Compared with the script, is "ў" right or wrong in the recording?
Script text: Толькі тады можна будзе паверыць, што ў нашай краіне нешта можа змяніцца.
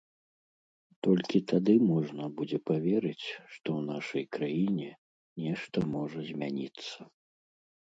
right